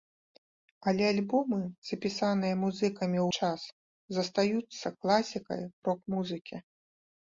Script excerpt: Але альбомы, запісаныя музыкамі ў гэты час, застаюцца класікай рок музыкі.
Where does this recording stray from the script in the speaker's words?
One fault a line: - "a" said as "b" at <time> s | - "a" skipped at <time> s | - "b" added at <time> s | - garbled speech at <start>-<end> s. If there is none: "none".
- "гэты" skipped at 3.3 s